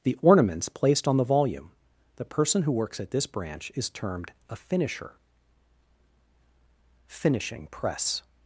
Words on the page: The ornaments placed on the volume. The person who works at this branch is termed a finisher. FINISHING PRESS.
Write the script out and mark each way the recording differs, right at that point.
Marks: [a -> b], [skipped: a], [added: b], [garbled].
The ornaments placed on the volume. The person who works at this branch is termed a finisher. FINISHING PRESS.